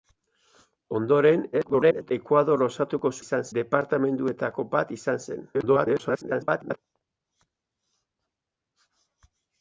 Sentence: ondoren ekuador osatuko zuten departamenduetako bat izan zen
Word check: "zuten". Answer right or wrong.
wrong